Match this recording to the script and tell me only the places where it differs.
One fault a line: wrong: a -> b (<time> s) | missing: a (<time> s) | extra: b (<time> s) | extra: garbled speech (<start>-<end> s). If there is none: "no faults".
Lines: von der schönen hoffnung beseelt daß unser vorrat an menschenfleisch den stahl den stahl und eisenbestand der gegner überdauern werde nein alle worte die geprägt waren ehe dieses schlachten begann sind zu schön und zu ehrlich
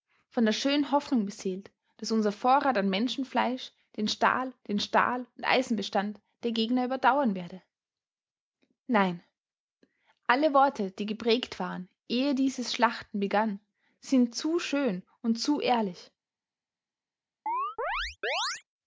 no faults